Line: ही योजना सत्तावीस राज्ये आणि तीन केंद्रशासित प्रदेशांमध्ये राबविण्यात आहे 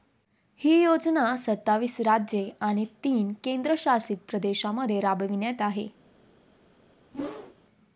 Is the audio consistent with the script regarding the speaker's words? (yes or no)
yes